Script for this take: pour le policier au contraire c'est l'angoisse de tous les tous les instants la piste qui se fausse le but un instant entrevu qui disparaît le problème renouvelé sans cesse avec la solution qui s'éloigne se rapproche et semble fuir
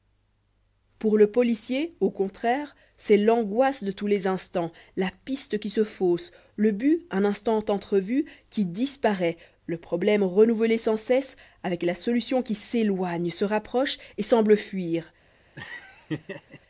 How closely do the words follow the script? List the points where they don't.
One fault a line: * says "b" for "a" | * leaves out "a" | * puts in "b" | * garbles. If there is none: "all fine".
* leaves out "tous les"